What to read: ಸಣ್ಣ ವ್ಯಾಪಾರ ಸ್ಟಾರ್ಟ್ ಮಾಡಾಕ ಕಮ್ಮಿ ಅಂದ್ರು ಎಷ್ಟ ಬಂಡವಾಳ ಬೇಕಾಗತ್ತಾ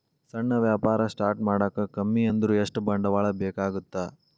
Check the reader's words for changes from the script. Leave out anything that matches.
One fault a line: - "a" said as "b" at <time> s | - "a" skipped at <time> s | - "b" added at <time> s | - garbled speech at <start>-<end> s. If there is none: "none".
none